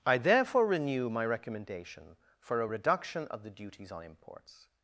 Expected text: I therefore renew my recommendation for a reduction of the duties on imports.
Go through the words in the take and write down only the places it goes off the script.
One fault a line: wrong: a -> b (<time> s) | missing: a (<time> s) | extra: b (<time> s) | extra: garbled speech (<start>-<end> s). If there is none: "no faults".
no faults